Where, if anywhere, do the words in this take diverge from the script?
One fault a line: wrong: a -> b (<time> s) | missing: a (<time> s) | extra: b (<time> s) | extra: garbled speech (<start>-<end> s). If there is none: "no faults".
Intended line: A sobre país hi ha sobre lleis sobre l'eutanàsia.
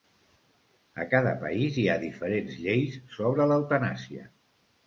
wrong: sobre -> cada (1.1 s)
wrong: sobre -> diferents (2.0 s)